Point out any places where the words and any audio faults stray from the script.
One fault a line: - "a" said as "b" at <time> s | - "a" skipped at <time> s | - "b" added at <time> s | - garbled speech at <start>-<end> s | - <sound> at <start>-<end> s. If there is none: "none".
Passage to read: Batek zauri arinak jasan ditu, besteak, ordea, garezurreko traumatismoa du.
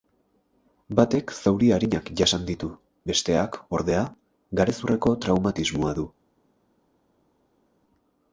none